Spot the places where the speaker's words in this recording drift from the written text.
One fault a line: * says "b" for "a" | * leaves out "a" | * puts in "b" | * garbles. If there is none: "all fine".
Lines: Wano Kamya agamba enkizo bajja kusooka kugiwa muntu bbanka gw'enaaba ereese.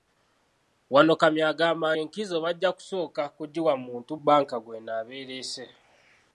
all fine